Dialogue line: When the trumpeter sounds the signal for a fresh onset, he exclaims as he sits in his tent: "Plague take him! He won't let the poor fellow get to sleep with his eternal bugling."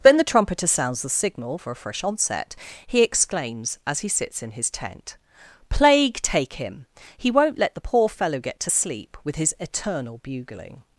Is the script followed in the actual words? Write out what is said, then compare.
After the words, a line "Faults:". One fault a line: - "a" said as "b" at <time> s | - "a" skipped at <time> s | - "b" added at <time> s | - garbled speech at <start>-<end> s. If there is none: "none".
Then the trumpeter sounds the signal for a fresh onset, he exclaims as he sits in his tent: "Plague take him! He won't let the poor fellow get to sleep with his eternal bugling."
Faults:
- "When" said as "Then" at 0.0 s